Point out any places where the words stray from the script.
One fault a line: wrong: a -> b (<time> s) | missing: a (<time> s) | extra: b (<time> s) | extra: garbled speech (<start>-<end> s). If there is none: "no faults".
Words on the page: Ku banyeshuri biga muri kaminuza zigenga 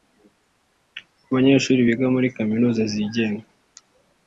no faults